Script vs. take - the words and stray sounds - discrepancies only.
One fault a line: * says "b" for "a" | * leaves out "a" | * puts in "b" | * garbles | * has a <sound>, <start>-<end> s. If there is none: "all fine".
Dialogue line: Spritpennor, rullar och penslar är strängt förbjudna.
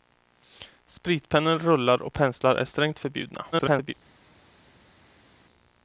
* garbles